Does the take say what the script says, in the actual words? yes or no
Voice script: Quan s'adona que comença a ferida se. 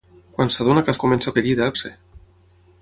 yes